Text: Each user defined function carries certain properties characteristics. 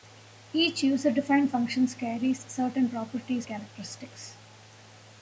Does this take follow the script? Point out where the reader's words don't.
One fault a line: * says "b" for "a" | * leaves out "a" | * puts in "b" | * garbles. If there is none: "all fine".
all fine